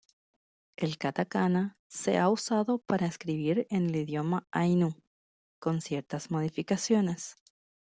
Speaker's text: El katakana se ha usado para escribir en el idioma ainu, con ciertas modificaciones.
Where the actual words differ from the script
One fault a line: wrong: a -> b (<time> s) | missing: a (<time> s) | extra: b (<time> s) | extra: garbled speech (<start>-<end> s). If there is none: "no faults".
no faults